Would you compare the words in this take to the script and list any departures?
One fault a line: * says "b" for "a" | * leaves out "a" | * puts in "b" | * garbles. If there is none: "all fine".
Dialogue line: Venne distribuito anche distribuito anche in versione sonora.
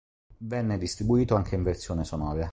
* leaves out "distribuito anche"